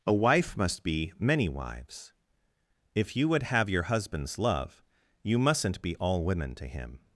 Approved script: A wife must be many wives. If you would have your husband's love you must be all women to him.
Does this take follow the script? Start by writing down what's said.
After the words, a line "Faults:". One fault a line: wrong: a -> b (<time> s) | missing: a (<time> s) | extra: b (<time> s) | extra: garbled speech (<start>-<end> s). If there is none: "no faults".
A wife must be many wives. If you would have your husband's love you mustn't be all women to him.
Faults:
wrong: must -> mustn't (5.4 s)